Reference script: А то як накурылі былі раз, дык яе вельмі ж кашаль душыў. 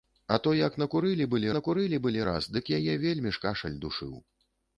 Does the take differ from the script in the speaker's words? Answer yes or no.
yes